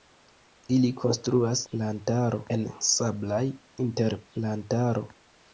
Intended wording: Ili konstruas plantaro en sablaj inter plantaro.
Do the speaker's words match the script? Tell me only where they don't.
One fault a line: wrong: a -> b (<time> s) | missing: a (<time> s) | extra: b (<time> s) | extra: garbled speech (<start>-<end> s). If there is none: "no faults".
no faults